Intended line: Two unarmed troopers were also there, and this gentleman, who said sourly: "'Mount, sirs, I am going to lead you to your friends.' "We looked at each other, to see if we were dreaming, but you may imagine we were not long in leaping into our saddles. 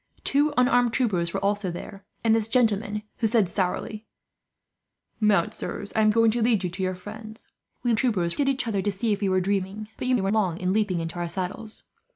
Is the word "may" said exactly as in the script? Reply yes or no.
no